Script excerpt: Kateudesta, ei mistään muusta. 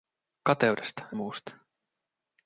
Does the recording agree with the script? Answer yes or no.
no